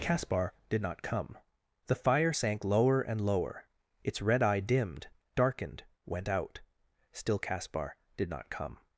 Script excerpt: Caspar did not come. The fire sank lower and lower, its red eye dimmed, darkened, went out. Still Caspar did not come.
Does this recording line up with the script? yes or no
yes